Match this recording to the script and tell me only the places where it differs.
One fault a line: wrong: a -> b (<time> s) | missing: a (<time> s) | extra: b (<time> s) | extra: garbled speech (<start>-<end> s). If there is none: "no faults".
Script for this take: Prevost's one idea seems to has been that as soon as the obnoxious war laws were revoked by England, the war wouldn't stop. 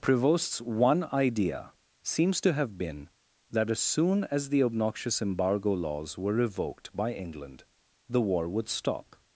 wrong: has -> have (2.5 s)
wrong: war -> embargo (5.2 s)
wrong: wouldn't -> would (8.5 s)